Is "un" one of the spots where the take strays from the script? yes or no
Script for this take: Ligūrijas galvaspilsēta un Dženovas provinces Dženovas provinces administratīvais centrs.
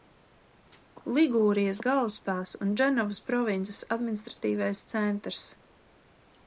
no